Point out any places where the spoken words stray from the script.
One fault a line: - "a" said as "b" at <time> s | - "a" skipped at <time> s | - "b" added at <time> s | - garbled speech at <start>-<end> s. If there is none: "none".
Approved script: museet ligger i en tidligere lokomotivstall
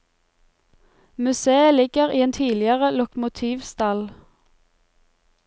none